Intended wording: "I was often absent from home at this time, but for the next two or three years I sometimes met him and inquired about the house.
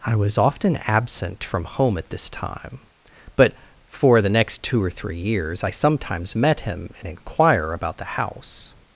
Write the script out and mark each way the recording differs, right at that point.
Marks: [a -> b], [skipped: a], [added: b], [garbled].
"I was often absent from home at this time, but for the next two or three years I sometimes met him and [inquired -> inquire] about the house.